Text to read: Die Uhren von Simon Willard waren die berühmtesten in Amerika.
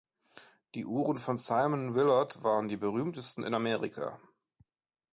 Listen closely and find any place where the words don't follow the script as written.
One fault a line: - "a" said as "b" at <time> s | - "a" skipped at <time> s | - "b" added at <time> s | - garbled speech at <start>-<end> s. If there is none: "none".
none